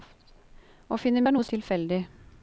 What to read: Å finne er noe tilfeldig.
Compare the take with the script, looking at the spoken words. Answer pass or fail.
pass